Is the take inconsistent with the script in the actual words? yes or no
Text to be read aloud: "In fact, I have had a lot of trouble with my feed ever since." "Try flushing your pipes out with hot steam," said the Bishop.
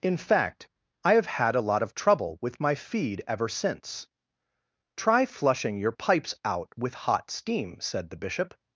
no